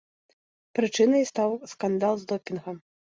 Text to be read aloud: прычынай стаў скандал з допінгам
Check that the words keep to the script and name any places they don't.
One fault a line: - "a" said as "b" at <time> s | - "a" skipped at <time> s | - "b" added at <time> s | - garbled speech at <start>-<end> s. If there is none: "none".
none